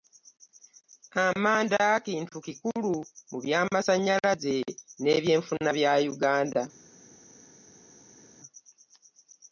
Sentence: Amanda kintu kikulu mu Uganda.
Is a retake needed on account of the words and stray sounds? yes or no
yes